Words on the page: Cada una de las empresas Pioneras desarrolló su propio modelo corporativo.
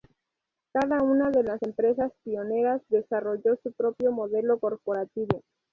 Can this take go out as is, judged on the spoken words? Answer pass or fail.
pass